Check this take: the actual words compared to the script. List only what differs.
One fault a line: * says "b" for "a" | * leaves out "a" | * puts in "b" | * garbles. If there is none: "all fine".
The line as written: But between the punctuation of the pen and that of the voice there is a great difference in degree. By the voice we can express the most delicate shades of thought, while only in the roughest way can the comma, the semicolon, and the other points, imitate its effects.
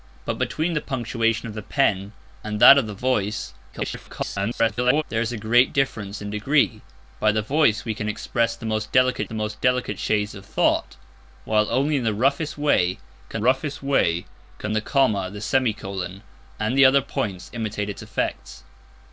* garbles
* puts in "the most delicate"
* puts in "roughest way can"